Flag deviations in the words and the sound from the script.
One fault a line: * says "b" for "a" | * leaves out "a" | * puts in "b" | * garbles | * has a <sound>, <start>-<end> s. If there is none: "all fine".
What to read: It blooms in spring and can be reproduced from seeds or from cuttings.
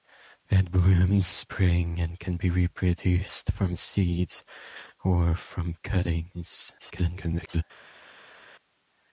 * leaves out "in"
* garbles